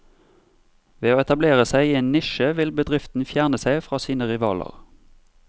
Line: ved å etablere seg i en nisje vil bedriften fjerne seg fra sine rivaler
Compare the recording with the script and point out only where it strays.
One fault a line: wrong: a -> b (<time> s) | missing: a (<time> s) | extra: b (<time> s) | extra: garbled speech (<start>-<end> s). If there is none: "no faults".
no faults